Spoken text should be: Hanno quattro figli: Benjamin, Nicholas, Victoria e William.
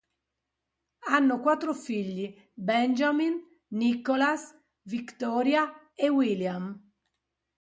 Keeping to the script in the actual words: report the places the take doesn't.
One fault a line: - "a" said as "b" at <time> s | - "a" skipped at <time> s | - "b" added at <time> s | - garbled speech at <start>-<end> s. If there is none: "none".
none